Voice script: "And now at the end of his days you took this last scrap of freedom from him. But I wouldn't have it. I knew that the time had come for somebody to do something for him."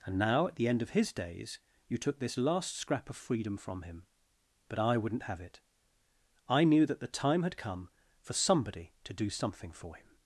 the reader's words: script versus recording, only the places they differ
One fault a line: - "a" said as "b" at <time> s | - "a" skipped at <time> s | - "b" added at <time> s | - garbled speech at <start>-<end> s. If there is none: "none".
none